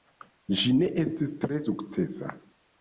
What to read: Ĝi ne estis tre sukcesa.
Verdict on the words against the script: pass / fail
pass